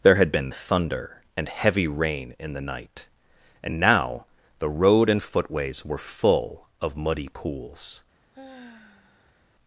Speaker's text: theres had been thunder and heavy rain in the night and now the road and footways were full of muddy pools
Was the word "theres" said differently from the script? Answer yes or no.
yes